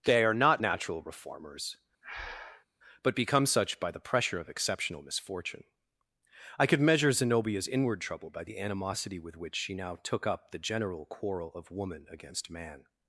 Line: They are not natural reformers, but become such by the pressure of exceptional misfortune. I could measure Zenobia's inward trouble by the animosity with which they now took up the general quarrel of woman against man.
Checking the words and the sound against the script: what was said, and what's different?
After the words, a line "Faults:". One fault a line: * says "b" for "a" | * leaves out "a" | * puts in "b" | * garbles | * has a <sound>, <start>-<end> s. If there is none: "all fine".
They are not natural reformers, but become such by the pressure of exceptional misfortune. I could measure Zenobia's inward trouble by the animosity with which she now took up the general quarrel of woman against man.
Faults:
* has a breath, 2.0-2.7 s
* says "she" for "they"